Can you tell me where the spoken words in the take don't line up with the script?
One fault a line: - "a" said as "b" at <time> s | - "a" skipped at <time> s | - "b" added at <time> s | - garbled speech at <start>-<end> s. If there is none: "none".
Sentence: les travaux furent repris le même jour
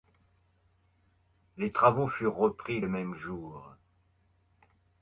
none